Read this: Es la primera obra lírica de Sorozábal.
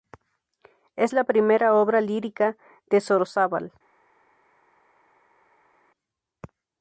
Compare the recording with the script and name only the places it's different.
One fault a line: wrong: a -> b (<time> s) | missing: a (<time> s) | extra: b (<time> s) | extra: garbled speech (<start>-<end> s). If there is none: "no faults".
no faults